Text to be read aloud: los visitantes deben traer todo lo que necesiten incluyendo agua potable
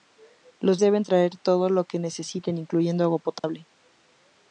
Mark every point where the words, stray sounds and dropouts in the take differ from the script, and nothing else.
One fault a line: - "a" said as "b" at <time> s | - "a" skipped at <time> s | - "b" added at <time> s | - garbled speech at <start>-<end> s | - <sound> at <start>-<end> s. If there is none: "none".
- "visitantes" skipped at 0.8 s
- dropout at 3.4-3.4 s